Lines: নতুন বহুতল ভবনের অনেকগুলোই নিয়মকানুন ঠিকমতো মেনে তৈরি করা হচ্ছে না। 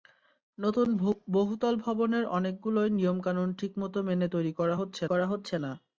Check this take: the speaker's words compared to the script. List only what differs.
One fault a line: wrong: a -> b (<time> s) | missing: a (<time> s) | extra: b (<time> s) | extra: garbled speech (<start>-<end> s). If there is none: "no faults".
extra: করা হচ্ছে (5.1 s)